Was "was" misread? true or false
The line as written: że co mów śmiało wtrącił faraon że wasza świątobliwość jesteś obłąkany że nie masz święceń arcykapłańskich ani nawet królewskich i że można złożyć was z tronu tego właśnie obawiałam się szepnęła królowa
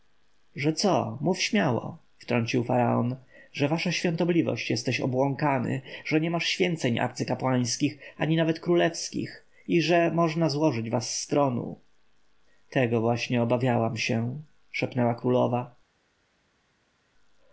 false